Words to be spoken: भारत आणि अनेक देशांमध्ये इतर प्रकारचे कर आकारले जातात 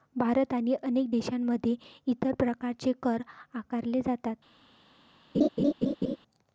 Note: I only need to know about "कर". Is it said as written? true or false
true